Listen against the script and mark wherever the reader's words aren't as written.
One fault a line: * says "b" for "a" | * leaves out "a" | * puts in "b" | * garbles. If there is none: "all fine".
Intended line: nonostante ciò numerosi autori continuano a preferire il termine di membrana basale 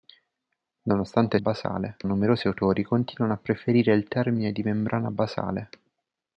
* says "basale" for "ciò"